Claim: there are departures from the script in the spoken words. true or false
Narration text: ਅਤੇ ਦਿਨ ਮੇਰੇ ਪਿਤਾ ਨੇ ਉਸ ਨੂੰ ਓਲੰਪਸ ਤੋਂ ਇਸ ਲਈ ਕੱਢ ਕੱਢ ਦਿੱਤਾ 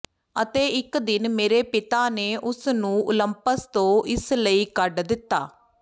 true